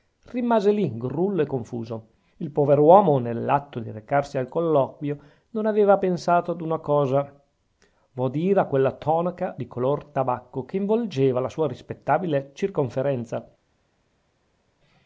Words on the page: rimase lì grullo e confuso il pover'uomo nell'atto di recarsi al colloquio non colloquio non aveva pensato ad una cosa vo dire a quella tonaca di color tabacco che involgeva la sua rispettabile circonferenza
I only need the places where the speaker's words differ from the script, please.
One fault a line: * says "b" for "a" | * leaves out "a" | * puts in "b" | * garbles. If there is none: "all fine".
* leaves out "colloquio non"